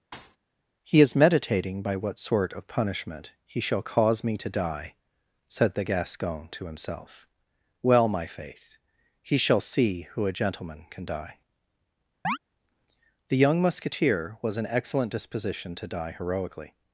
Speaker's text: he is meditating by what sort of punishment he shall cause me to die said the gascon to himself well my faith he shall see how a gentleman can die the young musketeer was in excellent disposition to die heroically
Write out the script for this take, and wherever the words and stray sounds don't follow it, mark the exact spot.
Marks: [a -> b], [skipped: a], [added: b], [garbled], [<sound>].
[thud] he is meditating by what sort of punishment he shall cause me to die said the gascon to himself well my faith he shall see [how -> who] a gentleman can die [chirp] the young musketeer was in excellent disposition to die heroically